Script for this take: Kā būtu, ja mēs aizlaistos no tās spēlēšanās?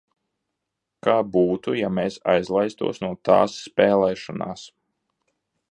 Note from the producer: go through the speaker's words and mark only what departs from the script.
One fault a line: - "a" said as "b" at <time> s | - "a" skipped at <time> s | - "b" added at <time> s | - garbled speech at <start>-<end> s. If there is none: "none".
none